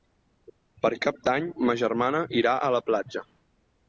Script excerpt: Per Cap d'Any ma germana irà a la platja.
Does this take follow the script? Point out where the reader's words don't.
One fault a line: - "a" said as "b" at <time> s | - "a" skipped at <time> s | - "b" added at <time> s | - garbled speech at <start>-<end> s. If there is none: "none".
none